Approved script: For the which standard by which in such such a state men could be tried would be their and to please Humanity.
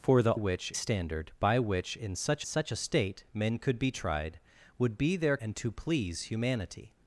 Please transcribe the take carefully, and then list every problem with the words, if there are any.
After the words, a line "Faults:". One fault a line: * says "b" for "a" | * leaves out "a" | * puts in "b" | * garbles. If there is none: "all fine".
For the which standard by which in such such a state men could be tried would be their and to please Humanity.
Faults:
all fine